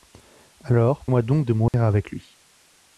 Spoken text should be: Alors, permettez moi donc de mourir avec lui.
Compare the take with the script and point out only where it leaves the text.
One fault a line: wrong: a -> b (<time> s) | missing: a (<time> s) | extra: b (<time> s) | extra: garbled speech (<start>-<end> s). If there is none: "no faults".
missing: permettez (1.1 s)